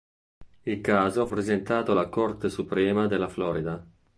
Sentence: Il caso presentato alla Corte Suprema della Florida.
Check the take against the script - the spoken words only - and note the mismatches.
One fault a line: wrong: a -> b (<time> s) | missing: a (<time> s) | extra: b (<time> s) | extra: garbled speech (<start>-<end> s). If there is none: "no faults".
no faults